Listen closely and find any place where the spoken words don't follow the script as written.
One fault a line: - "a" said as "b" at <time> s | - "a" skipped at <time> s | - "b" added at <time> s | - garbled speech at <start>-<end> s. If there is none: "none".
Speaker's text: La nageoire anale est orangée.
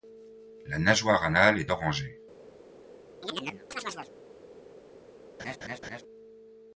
none